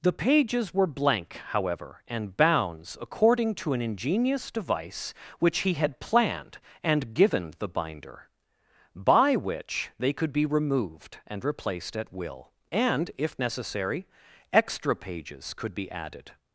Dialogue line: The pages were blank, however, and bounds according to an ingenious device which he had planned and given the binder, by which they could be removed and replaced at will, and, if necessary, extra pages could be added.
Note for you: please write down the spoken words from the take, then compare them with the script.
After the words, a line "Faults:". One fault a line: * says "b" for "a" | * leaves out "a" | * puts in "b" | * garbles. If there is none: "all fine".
The pages were blank, however, and bounds according to an ingenious device which he had planned and given the binder, by which they could be removed and replaced at will, and, if necessary, extra pages could be added.
Faults:
all fine